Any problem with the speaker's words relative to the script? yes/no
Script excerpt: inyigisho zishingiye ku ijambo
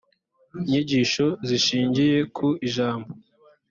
no